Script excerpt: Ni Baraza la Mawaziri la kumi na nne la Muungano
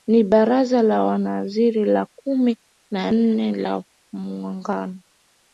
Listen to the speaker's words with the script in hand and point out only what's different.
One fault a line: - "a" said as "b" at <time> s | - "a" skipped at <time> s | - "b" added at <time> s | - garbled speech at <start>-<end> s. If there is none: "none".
none